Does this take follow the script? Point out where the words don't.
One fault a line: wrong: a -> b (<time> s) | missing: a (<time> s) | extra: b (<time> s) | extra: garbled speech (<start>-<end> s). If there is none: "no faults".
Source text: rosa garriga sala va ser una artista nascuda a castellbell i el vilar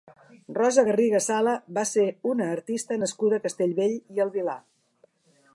no faults